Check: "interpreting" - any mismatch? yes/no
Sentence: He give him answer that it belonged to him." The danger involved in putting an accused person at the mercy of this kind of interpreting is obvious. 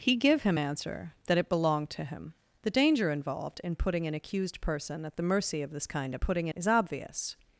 yes